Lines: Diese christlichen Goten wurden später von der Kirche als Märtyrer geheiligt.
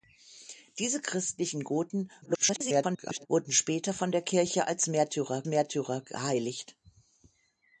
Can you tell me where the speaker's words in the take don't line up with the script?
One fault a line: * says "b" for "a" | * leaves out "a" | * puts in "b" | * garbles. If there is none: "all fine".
* garbles
* puts in "Märtyrer"